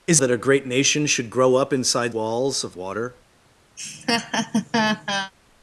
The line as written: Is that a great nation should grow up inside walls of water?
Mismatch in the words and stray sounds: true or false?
true